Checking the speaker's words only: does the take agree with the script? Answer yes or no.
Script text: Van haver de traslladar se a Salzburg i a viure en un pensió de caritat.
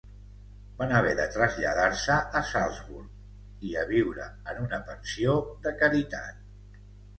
no